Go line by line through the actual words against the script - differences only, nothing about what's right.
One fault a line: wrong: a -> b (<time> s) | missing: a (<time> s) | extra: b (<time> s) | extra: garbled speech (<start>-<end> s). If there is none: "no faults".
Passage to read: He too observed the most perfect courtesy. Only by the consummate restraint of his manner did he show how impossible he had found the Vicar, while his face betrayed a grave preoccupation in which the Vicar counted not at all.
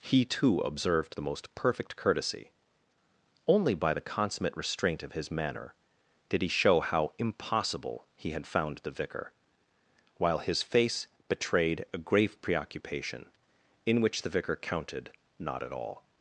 no faults